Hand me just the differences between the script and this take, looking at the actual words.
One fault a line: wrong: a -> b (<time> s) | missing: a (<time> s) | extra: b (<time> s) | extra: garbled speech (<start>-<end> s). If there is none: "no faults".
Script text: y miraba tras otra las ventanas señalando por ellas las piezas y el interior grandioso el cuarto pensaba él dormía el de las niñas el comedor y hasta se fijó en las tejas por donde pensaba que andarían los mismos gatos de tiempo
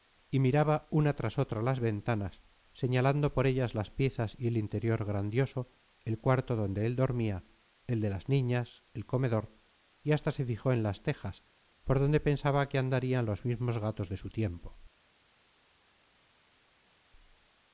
extra: una (0.9 s)
wrong: pensaba -> donde (6.5 s)
extra: su (14.2 s)